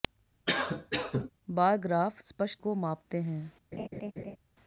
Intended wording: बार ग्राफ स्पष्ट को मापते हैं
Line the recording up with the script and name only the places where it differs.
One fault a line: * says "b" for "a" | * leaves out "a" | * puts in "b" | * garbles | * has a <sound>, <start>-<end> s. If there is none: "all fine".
* has a cough, 0.5-1.3 s
* has a laugh, 3.7-4.4 s